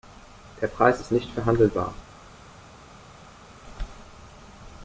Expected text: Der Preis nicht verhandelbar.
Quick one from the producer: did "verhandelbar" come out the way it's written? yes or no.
yes